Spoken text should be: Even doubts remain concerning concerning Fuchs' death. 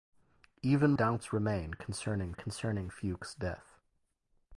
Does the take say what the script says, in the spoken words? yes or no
yes